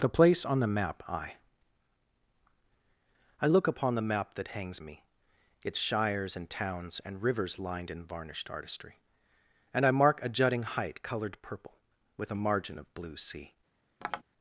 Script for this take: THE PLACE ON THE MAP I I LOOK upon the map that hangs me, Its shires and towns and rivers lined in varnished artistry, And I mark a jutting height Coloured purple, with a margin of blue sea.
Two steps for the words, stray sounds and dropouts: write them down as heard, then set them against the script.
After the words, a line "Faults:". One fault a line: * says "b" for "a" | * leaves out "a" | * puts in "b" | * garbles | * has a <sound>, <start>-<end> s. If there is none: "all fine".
THE PLACE ON THE MAP I I LOOK upon the map that hangs me, Its shires and towns and rivers lined in varnished artistry, And I mark a jutting height Coloured purple, with a margin of blue sea.
Faults:
* has a tap, 14.0-14.2 s